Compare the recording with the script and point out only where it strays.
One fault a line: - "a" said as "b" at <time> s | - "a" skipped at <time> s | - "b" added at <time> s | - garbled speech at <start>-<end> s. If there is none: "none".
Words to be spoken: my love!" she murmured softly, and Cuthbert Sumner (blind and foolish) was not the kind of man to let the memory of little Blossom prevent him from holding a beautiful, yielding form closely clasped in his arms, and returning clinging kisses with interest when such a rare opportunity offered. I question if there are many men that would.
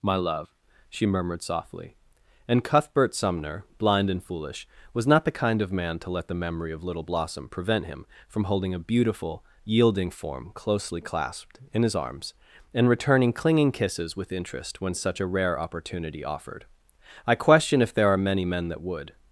none